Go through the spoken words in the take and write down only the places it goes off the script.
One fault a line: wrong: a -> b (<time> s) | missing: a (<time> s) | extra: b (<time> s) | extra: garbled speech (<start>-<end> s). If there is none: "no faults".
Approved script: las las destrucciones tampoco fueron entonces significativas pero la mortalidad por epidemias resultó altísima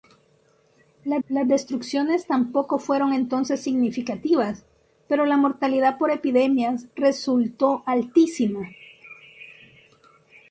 no faults